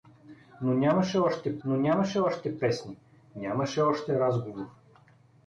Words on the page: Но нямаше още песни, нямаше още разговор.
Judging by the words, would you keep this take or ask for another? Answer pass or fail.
fail